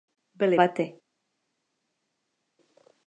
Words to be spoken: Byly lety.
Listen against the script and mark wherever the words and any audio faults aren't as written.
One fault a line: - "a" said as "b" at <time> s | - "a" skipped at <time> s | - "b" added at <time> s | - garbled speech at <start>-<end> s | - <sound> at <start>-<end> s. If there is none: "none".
none